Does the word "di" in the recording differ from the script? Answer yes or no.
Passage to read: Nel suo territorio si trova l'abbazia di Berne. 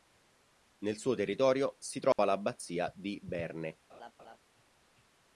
no